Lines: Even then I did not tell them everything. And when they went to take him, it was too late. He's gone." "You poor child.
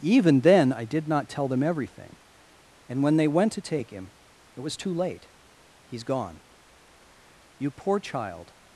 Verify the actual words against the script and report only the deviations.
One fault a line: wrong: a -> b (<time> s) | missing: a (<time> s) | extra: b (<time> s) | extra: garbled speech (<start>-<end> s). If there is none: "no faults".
no faults